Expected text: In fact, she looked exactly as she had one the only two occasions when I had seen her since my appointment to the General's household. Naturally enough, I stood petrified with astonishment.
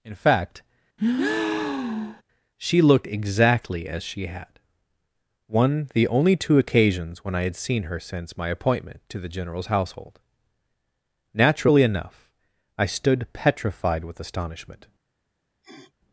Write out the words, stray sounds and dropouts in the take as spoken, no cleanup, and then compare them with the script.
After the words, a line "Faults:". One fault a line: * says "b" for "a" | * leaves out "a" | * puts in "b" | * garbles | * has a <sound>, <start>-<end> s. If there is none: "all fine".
In fact, she looked exactly as she had one the only two occasions when I had seen her since my appointment to the General's household. Naturally enough, I stood petrified with astonishment.
Faults:
* has a breath, 1.0-2.2 s
* has a sniff, 15.6-15.9 s